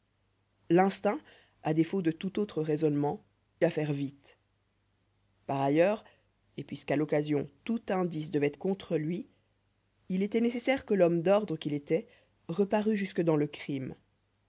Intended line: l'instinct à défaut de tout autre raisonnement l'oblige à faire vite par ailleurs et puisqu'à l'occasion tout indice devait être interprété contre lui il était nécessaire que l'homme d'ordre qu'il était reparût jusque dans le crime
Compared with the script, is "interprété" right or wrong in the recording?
wrong